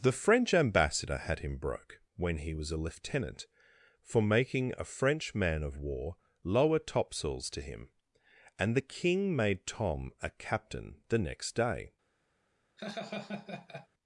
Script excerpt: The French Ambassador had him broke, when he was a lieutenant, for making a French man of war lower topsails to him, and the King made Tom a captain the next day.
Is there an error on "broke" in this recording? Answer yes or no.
no